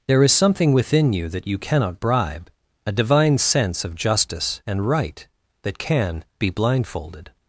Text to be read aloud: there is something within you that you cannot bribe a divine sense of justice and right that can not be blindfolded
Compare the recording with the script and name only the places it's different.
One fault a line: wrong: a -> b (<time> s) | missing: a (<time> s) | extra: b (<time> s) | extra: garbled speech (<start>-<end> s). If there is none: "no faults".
missing: not (6.2 s)